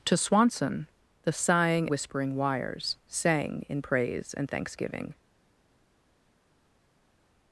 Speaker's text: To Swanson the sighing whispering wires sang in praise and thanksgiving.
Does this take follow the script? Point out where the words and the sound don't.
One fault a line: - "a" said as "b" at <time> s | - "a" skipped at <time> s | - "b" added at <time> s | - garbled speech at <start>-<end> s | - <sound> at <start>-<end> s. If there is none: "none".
none